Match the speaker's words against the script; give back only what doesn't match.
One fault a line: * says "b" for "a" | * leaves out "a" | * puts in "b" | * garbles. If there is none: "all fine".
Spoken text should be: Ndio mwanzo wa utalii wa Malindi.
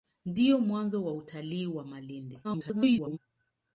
* garbles